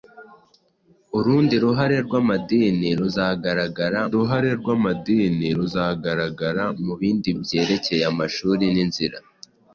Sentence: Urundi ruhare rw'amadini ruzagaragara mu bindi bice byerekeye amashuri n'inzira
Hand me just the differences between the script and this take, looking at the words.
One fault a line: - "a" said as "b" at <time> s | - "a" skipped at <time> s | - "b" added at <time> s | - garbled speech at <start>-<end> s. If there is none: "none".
- "ruhare rw'amadini ruzagaragara" added at 4.1 s
- "bice" skipped at 7.3 s